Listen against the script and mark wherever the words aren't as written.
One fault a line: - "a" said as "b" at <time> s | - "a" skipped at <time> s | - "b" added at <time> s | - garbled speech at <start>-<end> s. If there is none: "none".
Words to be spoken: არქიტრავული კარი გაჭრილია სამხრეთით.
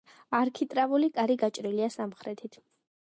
none